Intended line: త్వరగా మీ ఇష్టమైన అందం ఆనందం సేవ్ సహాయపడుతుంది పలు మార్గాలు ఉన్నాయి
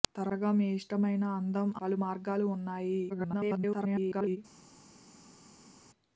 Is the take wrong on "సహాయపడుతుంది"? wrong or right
wrong